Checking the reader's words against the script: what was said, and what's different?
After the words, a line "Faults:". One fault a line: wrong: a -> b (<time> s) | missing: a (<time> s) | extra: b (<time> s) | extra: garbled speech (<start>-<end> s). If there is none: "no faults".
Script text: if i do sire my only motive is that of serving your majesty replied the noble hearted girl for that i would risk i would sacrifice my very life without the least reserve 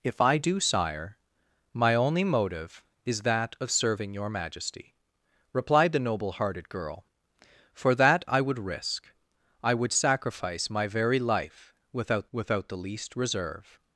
if i do sire my only motive is that of serving your majesty replied the noble hearted girl for that i would risk i would sacrifice my very life without without the least reserve
Faults:
extra: without (12.3 s)